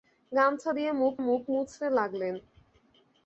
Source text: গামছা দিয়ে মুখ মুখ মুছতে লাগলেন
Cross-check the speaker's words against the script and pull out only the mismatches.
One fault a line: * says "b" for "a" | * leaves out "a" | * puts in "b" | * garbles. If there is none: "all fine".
all fine